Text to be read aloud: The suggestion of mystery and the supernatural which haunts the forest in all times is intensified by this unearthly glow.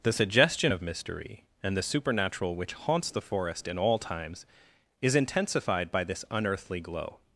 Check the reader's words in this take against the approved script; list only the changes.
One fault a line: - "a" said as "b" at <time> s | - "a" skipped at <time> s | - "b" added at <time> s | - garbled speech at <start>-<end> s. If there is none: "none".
none